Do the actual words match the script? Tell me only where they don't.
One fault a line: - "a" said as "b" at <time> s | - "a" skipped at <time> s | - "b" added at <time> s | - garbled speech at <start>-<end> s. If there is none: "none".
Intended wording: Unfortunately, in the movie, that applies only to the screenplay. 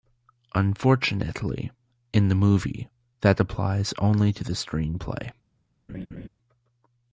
none